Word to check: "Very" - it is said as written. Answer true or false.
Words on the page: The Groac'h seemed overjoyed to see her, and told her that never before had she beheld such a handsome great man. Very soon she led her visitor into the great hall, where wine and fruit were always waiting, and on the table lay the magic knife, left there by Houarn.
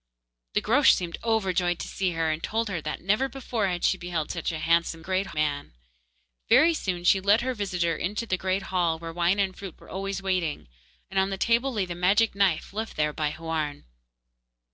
true